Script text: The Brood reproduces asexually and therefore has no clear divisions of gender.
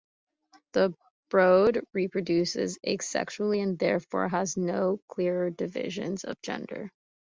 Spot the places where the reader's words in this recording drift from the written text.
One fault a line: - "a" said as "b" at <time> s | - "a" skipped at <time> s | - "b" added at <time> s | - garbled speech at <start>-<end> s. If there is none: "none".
none